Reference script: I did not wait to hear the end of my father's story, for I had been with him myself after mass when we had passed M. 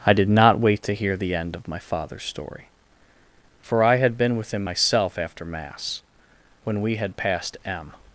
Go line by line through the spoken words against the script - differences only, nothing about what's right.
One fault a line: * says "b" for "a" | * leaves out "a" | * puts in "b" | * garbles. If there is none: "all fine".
all fine